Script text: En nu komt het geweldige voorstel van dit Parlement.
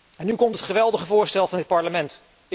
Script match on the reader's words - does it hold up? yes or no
yes